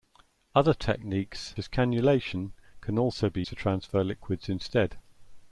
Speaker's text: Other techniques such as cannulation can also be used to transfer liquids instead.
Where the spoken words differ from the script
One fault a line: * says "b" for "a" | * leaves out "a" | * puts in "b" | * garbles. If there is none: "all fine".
* leaves out "such"
* leaves out "used"